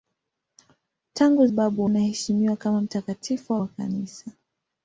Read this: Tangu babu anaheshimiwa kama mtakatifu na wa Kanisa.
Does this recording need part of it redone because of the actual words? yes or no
no